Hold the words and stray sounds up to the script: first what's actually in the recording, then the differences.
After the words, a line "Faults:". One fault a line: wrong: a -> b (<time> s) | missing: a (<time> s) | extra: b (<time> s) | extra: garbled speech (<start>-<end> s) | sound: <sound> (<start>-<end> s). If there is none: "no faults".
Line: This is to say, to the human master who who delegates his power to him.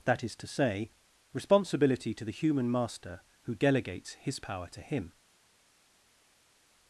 That is to say, responsibility to the human master who delegates his power to him.
Faults:
wrong: This -> That (0.1 s)
extra: responsibility (1.3 s)
missing: who (3.5 s)